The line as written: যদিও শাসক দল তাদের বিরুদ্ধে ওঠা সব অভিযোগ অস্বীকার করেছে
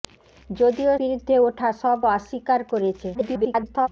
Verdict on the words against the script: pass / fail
fail